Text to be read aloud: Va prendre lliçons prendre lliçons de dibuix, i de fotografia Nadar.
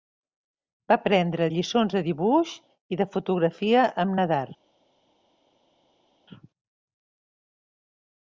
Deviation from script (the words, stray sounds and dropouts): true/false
true